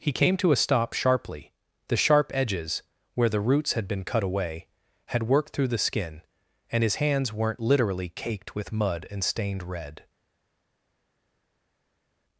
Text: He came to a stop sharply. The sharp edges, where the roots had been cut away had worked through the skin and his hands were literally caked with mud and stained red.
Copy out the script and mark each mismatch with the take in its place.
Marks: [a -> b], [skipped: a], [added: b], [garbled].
He came to a stop sharply. The sharp edges, where the roots had been cut away had worked through the skin and his hands [were -> weren't] literally caked with mud and stained red.